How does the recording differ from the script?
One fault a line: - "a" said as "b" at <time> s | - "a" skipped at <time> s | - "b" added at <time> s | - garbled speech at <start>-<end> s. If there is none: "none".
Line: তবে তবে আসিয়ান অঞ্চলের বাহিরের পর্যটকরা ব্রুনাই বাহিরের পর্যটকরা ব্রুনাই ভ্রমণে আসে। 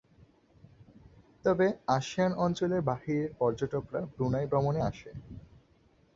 - "তবে" skipped at 1.6 s
- "বাহিরের পর্যটকরা ব্রুনাই" skipped at 4.5 s